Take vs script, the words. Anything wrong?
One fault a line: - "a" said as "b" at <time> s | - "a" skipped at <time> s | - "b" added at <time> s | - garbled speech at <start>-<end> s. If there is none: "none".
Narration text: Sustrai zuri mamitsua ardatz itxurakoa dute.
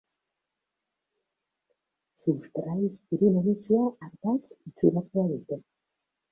none